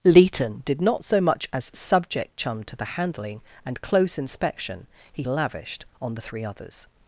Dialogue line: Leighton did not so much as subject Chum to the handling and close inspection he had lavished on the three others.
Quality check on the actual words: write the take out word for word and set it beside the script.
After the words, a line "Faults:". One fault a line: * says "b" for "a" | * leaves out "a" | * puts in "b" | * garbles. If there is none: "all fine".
Leighton did not so much as subject Chum to the handling and close inspection he lavished on the three others.
Faults:
* leaves out "had"